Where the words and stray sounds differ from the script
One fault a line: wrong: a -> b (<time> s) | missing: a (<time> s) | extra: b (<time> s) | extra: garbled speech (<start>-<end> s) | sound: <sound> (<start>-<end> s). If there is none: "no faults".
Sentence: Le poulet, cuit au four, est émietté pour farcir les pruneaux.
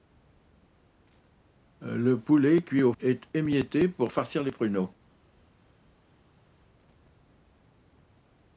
missing: four (2.9 s)